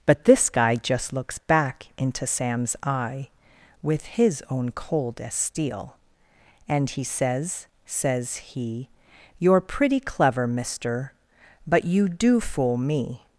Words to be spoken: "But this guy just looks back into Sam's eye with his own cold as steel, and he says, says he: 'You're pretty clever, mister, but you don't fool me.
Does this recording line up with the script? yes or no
no